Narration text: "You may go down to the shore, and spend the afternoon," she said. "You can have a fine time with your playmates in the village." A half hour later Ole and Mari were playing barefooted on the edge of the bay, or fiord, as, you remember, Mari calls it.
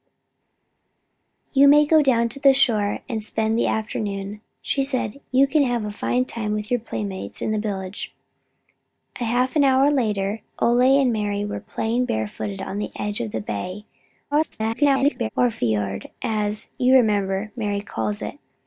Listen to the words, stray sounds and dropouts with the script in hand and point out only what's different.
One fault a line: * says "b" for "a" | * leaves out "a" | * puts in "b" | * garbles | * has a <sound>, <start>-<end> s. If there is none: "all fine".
* garbles